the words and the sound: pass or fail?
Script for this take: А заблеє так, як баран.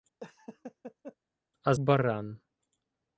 fail